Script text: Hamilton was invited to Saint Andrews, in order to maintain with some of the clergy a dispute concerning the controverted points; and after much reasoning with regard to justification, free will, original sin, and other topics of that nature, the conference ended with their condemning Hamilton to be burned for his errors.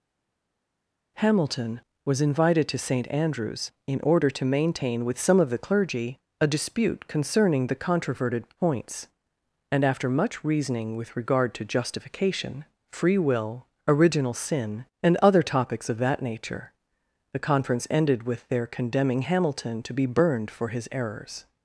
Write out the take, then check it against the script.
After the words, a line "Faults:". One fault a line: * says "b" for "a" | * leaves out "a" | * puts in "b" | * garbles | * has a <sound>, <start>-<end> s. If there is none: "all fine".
Hamilton was invited to Saint Andrews, in order to maintain with some of the clergy a dispute concerning the controverted points; and after much reasoning with regard to justification, free will, original sin, and other topics of that nature, the conference ended with their condemning Hamilton to be burned for his errors.
Faults:
all fine